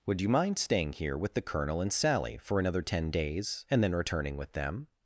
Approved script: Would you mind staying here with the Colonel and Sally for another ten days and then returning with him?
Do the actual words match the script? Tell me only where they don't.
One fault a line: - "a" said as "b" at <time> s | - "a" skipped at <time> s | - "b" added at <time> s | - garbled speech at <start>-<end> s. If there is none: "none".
- "him" said as "them" at 4.5 s